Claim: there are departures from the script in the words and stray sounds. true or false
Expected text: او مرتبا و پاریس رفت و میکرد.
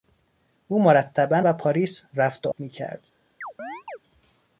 true